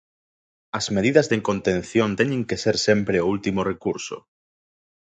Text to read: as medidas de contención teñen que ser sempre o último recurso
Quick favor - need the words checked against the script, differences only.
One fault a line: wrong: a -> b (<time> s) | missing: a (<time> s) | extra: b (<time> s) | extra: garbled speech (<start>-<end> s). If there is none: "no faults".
no faults